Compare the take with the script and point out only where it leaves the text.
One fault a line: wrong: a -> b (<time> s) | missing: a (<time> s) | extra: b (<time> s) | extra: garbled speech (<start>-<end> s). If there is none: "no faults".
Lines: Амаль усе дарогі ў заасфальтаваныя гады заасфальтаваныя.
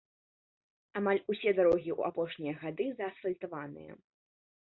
wrong: заасфальтаваныя -> апошнія (2.1 s)